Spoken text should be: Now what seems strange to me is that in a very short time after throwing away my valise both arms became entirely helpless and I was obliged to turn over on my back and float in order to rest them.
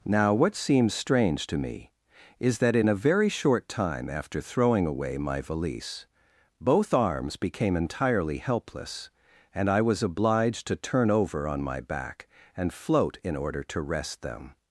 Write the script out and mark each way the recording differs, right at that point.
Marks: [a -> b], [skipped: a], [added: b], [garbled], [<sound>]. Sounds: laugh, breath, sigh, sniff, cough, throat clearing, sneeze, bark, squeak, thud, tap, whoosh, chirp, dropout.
Now what seems strange to me is that in a very short time after throwing away my valise both arms became entirely helpless and I was obliged to turn over on my back and float in order to rest them.